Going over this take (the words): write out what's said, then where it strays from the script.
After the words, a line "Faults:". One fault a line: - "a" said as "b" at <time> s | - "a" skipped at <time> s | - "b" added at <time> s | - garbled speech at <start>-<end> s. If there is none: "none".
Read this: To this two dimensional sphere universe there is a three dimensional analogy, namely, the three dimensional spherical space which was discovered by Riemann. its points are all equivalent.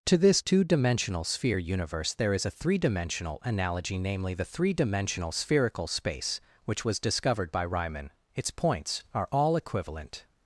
To this two dimensional sphere universe there is a three dimensional analogy, namely, the three dimensional spherical space which was discovered by Riemann. its points are all equivalent.
Faults:
none